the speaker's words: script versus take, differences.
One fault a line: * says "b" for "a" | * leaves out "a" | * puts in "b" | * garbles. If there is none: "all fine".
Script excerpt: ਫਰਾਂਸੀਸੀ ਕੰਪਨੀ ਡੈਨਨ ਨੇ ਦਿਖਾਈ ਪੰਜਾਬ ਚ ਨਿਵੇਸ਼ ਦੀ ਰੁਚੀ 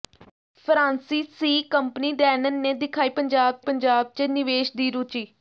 * puts in "ਪੰਜਾਬ"